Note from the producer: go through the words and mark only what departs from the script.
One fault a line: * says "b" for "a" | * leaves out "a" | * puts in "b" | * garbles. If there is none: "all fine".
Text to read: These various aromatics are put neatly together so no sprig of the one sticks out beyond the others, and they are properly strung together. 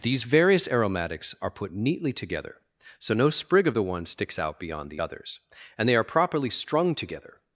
all fine